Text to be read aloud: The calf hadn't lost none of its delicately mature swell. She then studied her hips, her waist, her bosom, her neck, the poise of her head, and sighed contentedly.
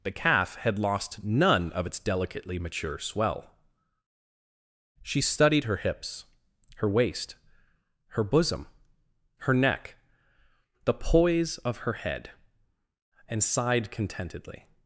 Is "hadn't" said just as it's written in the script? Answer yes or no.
no